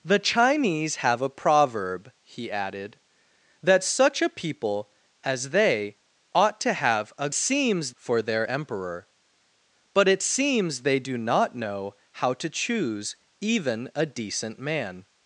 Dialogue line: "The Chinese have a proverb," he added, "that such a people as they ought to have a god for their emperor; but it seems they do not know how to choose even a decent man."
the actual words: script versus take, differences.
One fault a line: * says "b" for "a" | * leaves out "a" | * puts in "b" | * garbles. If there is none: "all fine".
* says "seems" for "god"